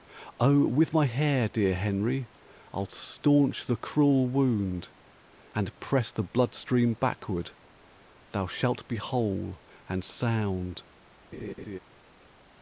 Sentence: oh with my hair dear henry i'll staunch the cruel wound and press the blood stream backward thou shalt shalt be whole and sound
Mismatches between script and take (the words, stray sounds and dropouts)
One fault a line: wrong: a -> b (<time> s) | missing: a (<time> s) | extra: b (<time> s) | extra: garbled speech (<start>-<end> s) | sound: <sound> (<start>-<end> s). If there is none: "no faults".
missing: shalt (8.9 s)
sound: laugh (11.3-11.8 s)